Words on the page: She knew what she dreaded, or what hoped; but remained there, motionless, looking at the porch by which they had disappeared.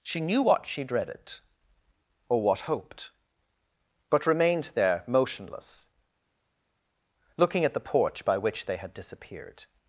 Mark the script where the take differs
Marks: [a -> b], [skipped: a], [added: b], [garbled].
She knew what she dreaded, or what hoped; but remained there, motionless, looking at the porch by which they had disappeared.